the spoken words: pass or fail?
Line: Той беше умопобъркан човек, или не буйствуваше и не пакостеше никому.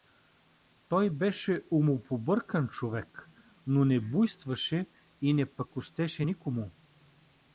fail